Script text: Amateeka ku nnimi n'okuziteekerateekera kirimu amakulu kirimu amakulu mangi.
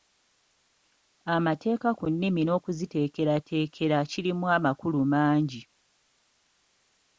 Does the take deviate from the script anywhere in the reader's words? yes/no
yes